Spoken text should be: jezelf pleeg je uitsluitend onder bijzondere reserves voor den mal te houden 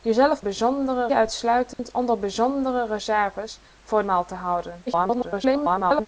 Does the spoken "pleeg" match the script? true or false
false